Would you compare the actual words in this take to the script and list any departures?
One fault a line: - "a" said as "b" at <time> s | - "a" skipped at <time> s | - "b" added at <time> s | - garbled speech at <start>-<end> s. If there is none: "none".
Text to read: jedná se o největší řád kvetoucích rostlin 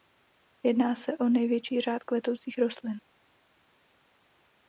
none